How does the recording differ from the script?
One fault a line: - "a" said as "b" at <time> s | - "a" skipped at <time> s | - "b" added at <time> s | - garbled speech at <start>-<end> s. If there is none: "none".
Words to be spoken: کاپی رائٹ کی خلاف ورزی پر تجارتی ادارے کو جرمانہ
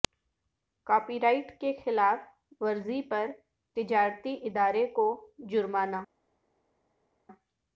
none